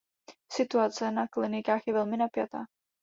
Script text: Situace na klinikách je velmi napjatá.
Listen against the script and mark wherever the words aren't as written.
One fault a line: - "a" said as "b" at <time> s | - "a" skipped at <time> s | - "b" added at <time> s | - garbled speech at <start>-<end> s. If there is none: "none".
none